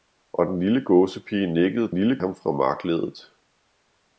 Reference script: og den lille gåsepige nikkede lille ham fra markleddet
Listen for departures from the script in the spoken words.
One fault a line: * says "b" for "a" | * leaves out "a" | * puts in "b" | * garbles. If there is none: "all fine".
all fine